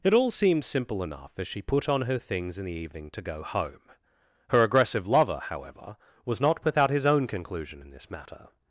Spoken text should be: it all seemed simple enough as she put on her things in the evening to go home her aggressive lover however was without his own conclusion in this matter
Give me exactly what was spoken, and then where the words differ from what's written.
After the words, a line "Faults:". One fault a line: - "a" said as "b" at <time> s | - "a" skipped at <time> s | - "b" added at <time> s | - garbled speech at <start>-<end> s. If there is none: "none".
it all seemed simple enough as she put on her things in the evening to go home her aggressive lover however was not without his own conclusion in this matter
Faults:
- "not" added at 6.4 s